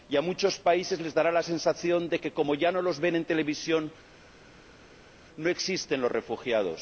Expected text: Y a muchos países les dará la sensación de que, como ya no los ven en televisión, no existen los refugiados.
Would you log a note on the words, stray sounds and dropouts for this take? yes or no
no